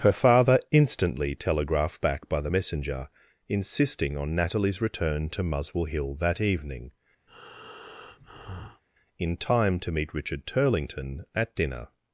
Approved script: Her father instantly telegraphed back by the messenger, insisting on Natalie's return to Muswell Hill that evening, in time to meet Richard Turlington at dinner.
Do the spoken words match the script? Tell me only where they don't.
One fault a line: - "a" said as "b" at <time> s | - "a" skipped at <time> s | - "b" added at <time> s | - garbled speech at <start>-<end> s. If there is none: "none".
none